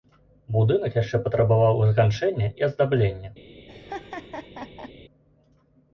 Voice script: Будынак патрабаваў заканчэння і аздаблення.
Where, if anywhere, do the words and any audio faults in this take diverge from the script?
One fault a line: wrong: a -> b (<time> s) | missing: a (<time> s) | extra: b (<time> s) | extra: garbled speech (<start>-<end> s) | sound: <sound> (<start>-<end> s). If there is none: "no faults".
extra: яшчэ (1.0 s)
sound: laugh (3.7-4.9 s)